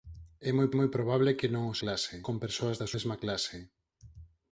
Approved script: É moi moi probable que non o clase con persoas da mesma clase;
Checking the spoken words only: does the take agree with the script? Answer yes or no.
yes